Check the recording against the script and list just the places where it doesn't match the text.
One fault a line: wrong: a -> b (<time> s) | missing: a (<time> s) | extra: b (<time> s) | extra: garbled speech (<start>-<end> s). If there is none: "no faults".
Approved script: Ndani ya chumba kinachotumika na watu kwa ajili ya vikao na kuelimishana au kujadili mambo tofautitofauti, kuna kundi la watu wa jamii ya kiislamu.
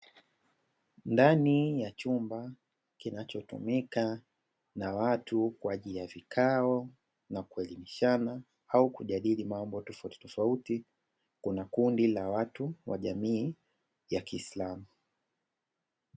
no faults